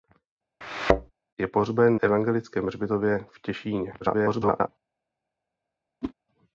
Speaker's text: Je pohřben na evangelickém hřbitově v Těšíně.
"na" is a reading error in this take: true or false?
true